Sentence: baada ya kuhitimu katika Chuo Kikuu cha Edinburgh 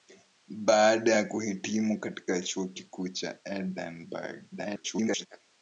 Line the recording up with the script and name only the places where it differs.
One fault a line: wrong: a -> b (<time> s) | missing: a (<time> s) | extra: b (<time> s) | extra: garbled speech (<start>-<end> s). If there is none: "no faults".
extra: garbled speech (4.5-5.3 s)